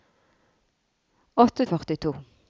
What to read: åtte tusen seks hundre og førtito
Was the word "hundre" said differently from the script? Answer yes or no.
yes